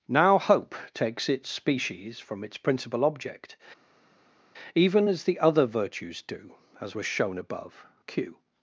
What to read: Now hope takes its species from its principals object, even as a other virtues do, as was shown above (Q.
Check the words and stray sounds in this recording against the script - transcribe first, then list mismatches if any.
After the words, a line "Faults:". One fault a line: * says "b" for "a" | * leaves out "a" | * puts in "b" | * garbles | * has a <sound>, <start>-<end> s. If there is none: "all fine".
Now hope takes its species from its principal object, even as the other virtues do, as was shown above (Q.
Faults:
* says "principal" for "principals"
* says "the" for "a"